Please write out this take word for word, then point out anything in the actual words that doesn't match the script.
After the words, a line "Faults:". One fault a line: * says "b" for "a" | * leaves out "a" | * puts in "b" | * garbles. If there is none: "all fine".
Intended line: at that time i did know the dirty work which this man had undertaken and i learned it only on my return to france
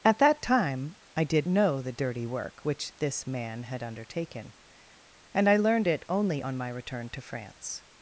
at that time i did know the dirty work which this man had undertaken and i learned it only on my return to france
Faults:
all fine